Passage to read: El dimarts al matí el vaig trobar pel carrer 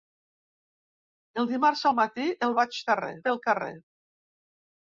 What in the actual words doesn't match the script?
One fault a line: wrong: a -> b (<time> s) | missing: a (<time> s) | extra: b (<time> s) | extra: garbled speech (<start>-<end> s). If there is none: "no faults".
wrong: trobar -> carrer (2.9 s)